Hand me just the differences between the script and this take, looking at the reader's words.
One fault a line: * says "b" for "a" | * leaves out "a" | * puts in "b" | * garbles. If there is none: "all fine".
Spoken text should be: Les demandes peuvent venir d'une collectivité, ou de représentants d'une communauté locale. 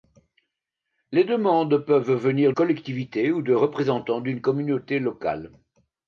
* leaves out "d'une"